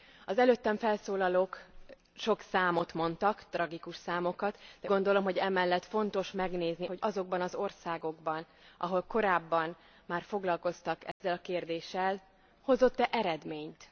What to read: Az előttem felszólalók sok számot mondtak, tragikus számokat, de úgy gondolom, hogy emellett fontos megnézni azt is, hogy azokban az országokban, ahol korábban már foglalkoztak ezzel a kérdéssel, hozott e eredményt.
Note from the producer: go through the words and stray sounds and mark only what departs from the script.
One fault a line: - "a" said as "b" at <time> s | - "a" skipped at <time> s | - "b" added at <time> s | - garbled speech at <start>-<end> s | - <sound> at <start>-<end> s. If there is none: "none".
- "úgy" skipped at 4.9 s
- "azt is" skipped at 6.9 s
- dropout at 11.1-11.2 s